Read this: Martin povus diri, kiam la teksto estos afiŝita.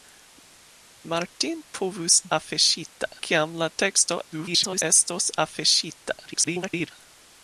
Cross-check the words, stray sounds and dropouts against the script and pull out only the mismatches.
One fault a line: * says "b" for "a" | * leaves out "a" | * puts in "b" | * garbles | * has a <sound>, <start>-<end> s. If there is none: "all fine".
* says "afiŝita" for "diri"
* garbles
* garbles